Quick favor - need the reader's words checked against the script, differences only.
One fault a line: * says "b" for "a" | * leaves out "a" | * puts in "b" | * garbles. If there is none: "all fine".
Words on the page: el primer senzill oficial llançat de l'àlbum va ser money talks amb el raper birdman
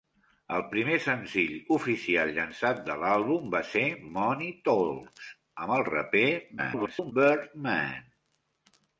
* garbles